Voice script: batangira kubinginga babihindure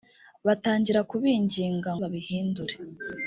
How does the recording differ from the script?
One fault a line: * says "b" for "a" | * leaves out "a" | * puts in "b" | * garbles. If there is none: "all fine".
all fine